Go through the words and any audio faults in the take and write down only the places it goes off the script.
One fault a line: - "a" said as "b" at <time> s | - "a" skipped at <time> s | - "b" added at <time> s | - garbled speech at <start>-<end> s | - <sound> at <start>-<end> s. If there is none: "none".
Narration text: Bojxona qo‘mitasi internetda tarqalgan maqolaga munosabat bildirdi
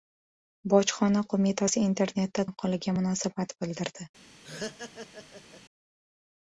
- "tarqalgan" skipped at 2.5 s
- laugh at 4.4-5.6 s